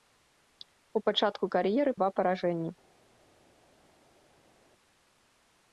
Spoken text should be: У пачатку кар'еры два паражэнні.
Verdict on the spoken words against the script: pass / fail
pass